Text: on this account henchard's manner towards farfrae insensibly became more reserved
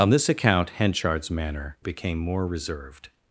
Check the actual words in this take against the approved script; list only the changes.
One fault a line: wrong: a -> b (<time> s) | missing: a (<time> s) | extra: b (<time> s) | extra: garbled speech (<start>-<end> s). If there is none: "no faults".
missing: towards farfrae insensibly (1.8 s)